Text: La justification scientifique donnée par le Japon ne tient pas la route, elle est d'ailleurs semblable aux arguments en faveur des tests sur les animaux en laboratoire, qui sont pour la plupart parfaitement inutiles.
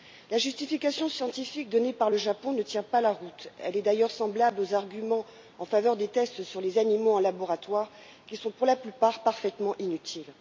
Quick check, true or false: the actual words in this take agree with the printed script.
true